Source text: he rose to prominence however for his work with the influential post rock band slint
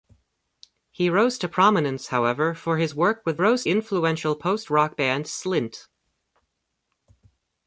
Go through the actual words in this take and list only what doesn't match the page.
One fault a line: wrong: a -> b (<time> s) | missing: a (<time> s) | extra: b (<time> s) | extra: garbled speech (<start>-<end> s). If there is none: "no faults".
wrong: the -> rose (3.4 s)